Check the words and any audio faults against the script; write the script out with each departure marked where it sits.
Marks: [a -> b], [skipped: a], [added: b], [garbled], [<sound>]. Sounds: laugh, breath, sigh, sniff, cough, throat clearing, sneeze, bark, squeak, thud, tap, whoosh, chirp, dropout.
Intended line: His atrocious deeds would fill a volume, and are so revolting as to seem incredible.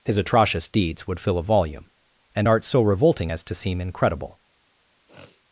His atrocious deeds would fill a volume, and [are -> art] so revolting as to seem incredible. [sniff]